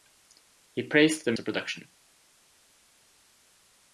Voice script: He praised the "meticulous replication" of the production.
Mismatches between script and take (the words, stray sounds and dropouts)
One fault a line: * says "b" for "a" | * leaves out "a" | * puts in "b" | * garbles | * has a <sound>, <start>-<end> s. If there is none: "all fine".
* leaves out "meticulous replication of"